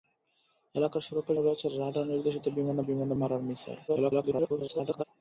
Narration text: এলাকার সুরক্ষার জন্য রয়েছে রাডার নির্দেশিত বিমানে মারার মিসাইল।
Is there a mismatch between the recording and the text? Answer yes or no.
yes